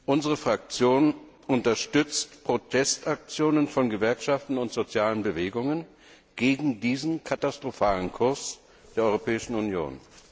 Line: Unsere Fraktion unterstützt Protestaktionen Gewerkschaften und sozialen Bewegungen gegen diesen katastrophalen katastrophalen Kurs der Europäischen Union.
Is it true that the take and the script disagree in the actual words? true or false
true